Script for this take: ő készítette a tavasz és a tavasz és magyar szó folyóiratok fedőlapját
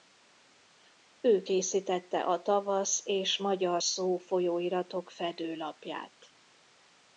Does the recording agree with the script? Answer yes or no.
no